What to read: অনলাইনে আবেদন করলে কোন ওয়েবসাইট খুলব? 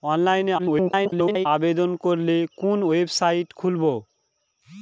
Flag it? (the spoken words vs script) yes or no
yes